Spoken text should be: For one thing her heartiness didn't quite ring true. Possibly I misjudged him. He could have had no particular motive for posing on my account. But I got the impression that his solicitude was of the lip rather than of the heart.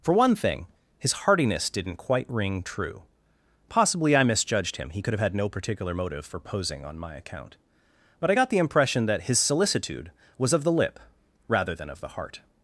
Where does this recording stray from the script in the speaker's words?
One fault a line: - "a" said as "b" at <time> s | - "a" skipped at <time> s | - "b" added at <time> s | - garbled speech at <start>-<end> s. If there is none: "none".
- "her" said as "his" at 1.0 s